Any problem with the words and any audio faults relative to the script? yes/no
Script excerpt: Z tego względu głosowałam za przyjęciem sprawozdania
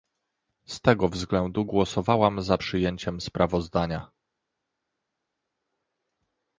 no